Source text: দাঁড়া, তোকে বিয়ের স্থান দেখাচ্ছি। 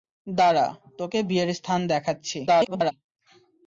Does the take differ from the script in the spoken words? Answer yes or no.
yes